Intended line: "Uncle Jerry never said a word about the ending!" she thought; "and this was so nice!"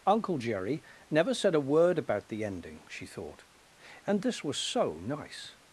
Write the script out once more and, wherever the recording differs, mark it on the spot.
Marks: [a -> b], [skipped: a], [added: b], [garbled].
"Uncle Jerry never said a word about the ending!" she thought; "and this was so nice!"